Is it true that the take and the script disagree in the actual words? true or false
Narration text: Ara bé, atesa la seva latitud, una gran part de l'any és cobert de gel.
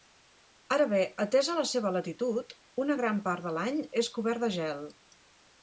false